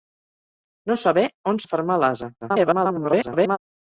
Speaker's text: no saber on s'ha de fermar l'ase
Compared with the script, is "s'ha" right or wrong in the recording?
wrong